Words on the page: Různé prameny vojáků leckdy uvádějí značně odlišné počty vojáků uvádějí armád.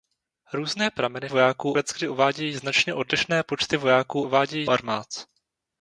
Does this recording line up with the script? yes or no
yes